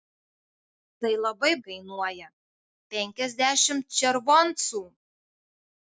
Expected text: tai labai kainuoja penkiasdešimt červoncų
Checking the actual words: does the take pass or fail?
pass